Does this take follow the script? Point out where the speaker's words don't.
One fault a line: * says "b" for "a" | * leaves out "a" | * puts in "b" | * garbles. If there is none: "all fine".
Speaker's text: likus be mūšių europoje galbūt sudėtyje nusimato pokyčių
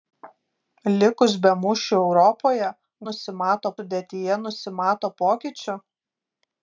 * says "nusimato" for "galbūt"